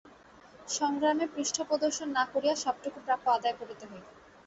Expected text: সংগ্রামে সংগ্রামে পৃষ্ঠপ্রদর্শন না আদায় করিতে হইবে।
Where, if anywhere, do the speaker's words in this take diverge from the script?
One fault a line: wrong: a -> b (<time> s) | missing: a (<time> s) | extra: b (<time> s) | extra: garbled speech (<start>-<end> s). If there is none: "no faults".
missing: সংগ্রামে (1.2 s)
extra: করিয়া সবটুকু প্রাপ্য (2.3 s)